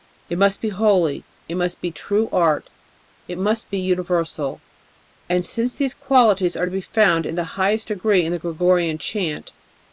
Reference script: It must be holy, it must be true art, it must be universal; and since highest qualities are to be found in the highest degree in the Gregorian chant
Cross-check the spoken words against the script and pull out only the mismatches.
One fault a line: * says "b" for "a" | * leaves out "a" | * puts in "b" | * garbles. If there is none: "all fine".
* says "these" for "highest"